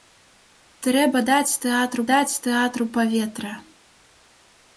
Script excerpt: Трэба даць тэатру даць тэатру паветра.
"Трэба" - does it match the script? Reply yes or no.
yes